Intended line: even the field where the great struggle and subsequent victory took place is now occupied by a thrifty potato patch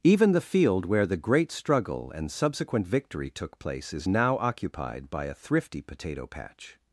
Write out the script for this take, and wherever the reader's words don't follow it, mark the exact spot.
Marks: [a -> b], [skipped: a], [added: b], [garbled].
even the field where the great struggle and subsequent victory took place is now occupied by a thrifty potato patch